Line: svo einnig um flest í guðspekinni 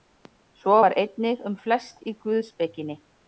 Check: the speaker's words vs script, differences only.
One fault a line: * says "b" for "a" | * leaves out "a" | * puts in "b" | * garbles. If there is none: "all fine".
* puts in "var"